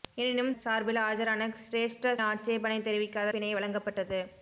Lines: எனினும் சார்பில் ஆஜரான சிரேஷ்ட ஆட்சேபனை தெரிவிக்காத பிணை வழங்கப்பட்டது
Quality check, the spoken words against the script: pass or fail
pass